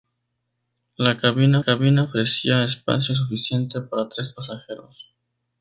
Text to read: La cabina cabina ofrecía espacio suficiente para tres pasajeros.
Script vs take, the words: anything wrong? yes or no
no